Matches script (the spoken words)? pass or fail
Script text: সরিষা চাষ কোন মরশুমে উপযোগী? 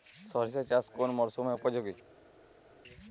pass